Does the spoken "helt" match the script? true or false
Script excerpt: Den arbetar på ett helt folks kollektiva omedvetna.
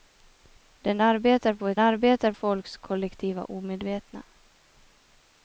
false